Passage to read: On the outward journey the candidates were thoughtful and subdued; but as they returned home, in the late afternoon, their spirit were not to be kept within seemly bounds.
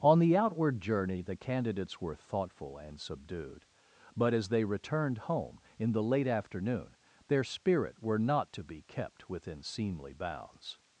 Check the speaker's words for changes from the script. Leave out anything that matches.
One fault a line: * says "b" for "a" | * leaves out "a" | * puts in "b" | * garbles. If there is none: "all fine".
all fine